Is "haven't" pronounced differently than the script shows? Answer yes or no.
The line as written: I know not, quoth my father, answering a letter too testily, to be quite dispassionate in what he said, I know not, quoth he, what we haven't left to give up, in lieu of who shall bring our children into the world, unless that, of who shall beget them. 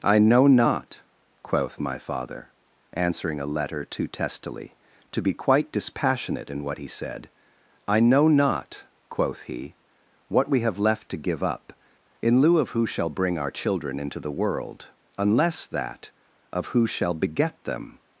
yes